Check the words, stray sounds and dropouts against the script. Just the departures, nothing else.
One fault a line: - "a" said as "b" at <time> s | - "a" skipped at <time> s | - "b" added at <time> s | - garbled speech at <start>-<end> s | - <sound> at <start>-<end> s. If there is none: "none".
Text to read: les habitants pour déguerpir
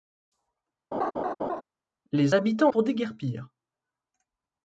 - laugh at 0.9-1.6 s